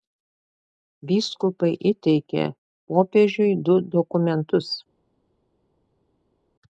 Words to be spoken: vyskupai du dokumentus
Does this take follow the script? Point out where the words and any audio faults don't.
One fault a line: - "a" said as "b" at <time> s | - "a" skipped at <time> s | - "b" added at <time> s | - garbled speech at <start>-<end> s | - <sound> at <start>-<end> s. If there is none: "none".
- "įteikė popiežiui" added at 1.9 s